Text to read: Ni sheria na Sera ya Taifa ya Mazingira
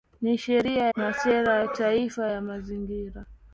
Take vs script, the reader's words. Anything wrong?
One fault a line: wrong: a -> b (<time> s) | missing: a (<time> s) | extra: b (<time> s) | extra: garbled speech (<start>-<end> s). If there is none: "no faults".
no faults